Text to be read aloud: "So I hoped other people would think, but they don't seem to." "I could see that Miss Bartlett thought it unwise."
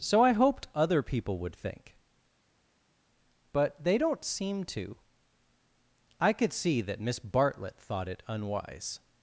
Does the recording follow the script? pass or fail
pass